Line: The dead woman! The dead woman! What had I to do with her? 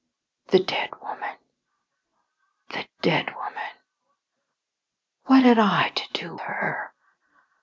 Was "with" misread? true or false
true